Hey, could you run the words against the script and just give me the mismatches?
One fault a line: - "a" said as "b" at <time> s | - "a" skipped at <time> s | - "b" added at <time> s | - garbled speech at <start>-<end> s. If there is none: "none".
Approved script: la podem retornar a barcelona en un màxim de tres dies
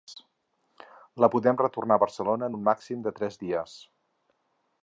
none